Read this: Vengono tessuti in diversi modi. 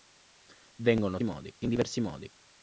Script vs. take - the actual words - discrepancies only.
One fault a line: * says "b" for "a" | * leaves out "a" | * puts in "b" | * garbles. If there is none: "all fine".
* says "modi" for "tessuti"